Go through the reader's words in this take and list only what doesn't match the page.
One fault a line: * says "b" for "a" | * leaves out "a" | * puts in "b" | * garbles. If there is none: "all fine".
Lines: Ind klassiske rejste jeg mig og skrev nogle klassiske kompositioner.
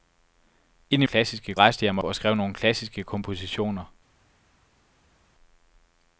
all fine